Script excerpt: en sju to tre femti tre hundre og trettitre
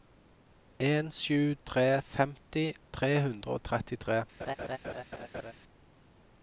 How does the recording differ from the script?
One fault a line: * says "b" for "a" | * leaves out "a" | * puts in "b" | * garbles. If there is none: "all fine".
* leaves out "to"